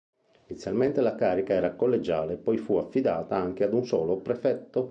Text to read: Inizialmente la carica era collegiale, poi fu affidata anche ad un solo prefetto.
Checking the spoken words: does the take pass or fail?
pass